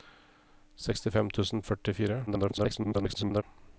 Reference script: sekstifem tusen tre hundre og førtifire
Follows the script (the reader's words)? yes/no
no